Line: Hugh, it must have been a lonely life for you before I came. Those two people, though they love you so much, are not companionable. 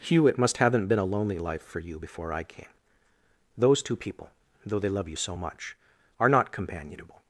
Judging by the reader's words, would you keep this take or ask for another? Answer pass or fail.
fail